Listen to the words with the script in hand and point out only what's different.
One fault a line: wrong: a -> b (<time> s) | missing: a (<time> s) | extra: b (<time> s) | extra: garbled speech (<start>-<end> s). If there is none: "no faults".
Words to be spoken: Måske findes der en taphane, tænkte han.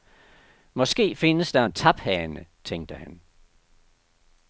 no faults